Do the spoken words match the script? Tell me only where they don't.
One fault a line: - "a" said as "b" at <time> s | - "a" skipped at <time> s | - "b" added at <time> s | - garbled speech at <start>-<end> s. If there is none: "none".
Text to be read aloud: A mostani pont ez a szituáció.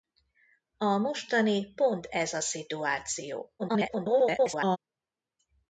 - garbled speech at 3.6-4.8 s